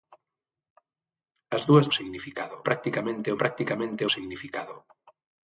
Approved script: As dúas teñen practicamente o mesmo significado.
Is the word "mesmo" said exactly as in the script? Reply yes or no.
no